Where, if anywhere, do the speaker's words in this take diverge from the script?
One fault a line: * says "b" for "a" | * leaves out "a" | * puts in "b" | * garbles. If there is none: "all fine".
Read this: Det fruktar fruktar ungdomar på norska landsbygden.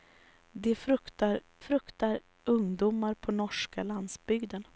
all fine